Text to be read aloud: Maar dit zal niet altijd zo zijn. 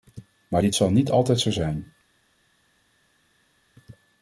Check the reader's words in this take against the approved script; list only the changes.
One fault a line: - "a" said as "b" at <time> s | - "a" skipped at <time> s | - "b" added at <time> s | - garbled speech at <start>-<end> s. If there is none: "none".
none